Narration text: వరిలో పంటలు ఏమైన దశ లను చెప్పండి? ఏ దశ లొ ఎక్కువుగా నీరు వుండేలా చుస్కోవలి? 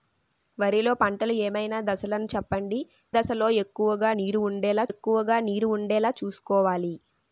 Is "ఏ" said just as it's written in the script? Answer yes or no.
no